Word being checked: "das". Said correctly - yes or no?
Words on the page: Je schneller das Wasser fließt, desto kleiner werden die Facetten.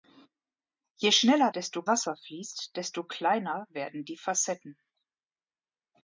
no